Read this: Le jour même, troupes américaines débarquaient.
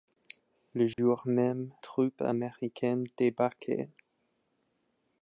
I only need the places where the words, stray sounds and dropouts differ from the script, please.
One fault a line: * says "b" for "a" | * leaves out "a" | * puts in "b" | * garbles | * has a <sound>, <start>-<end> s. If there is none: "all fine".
* has a dropout, 0.9-1.0 s